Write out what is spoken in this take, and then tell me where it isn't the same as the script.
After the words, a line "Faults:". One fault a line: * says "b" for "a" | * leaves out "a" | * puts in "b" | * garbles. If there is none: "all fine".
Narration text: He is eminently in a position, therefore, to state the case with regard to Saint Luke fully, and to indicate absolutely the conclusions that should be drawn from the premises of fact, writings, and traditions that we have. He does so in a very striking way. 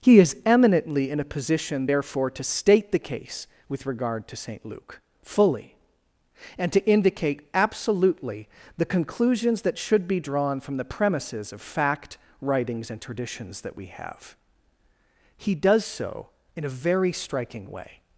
He is eminently in a position, therefore, to state the case with regard to Saint Luke fully, and to indicate absolutely the conclusions that should be drawn from the premises of fact, writings, and traditions that we have. He does so in a very striking way.
Faults:
all fine